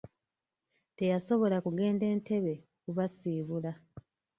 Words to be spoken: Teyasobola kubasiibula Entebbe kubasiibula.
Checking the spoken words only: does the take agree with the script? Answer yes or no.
no